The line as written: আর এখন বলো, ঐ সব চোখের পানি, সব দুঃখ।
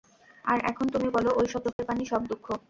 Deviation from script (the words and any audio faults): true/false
true